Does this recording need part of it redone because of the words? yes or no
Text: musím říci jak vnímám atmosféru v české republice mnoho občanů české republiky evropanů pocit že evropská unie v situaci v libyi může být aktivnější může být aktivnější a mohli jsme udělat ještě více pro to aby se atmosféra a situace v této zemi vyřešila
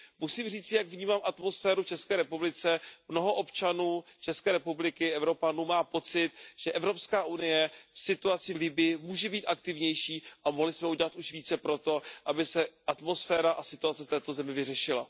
yes